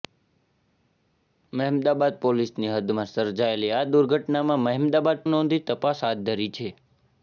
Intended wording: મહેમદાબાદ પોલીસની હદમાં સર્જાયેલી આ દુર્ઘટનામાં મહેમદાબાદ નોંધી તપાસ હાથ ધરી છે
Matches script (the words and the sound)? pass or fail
pass